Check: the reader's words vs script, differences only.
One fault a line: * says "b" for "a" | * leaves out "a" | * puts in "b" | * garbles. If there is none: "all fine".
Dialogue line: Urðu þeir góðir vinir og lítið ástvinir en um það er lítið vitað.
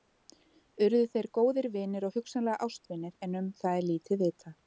* says "hugsanlega" for "lítið"